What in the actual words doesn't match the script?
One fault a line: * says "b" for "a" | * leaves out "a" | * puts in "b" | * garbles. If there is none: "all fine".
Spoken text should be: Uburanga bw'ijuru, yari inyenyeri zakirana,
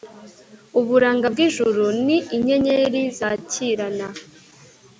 * says "ni" for "yari"